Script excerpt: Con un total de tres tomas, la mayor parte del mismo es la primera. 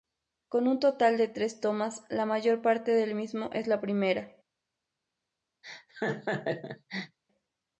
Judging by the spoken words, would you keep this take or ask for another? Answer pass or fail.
pass